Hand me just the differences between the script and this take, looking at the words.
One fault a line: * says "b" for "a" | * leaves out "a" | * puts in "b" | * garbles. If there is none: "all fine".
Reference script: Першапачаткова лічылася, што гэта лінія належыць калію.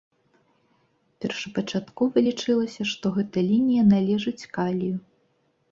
all fine